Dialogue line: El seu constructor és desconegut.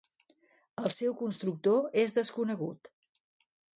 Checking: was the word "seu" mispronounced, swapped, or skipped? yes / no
no